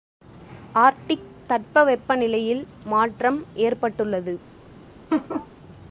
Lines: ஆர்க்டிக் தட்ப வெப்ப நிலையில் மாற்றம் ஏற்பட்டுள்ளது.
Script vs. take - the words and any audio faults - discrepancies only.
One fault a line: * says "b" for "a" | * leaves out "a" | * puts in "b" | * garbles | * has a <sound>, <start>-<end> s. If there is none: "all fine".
* has a laugh, 5.1-5.5 s